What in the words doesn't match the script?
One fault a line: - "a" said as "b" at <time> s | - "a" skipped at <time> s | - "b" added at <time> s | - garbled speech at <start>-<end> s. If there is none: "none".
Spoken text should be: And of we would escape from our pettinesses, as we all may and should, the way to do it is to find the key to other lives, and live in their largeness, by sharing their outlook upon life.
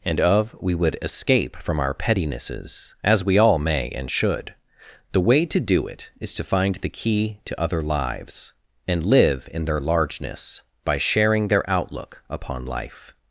none